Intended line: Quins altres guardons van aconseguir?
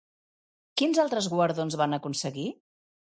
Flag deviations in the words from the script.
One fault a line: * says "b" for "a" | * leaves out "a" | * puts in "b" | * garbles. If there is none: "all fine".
all fine